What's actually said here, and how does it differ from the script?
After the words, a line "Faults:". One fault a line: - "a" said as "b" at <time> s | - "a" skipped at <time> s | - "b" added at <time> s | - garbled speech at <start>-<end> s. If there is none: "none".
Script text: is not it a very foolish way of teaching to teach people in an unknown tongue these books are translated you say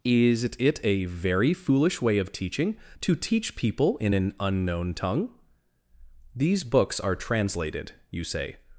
is it a very foolish way of teaching to teach people in an unknown tongue these books are translated you say
Faults:
- "not" skipped at 0.4 s